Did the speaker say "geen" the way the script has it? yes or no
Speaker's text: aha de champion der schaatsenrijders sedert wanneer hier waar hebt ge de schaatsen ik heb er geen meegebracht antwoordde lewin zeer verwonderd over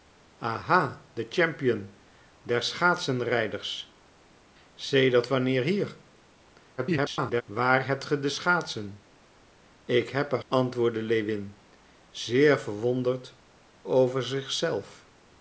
no